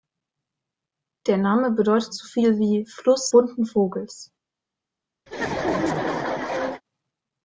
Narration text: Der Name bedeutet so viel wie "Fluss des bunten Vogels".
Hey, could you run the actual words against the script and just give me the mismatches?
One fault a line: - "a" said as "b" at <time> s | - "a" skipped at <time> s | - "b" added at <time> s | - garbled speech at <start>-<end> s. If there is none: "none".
- "des" skipped at 3.3 s